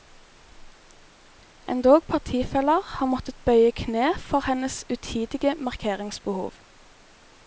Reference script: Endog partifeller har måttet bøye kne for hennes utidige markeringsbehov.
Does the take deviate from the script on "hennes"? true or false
false